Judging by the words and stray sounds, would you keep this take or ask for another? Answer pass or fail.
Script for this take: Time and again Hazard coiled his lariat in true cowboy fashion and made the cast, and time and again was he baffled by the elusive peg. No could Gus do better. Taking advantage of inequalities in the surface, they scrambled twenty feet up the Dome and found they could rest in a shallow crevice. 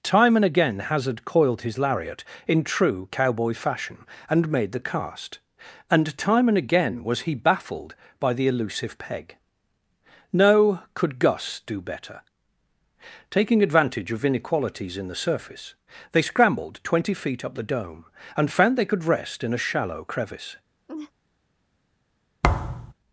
fail